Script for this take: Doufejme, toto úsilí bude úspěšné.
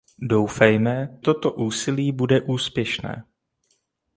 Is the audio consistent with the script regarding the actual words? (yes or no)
yes